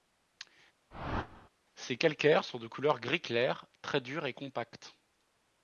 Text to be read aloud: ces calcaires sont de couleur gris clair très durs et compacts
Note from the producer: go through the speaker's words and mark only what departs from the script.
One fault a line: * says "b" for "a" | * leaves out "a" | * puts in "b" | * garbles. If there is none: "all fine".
all fine